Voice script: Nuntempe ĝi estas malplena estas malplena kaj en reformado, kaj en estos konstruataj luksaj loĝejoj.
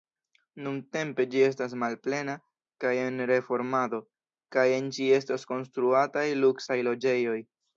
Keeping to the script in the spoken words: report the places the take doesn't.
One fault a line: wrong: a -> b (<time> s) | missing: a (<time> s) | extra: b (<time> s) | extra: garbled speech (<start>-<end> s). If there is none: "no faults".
missing: estas malplena (2.4 s)
extra: ĝi (5.0 s)